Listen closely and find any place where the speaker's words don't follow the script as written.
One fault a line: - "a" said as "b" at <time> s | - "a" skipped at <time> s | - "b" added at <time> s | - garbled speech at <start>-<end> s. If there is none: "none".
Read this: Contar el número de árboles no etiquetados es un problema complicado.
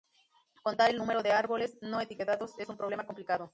none